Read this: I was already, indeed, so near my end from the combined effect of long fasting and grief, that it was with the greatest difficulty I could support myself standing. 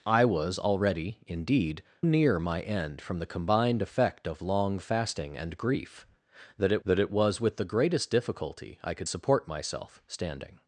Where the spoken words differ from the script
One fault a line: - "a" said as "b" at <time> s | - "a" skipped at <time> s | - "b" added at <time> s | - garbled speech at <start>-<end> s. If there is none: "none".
- "so" skipped at 1.8 s
- "that it" added at 6.8 s